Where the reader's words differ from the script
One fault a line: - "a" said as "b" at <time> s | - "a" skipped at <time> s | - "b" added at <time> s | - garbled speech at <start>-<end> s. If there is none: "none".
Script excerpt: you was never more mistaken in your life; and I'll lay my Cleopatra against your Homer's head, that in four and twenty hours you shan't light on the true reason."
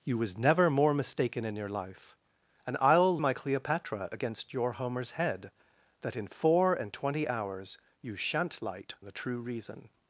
- "lay" skipped at 3.2 s
- "on" skipped at 8.9 s